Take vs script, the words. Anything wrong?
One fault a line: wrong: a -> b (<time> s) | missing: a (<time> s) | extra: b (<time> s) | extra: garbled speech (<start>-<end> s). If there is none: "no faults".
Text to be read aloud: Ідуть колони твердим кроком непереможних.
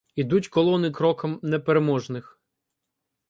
missing: твердим (0.9 s)